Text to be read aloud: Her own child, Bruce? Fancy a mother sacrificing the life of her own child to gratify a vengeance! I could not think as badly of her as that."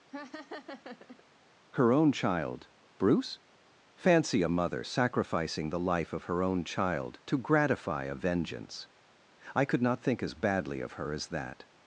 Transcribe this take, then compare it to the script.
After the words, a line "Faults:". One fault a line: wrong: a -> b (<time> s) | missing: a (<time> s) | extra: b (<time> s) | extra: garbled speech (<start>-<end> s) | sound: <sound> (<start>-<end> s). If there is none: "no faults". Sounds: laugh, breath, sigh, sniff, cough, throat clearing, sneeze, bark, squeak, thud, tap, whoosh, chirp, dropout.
Her own child, Bruce? Fancy a mother sacrificing the life of her own child to gratify a vengeance! I could not think as badly of her as that."
Faults:
sound: laugh (0.1-1.2 s)